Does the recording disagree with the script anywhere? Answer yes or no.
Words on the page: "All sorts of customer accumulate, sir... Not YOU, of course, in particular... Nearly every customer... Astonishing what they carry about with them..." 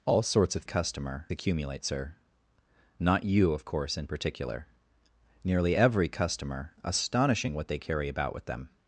no